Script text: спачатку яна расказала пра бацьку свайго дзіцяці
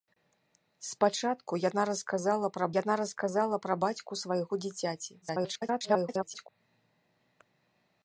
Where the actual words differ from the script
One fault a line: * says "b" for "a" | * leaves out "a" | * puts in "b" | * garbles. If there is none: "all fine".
* puts in "яна расказала пра"
* garbles